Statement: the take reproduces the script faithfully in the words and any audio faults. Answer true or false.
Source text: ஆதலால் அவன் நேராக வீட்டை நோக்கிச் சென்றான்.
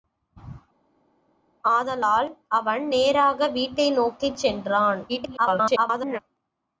false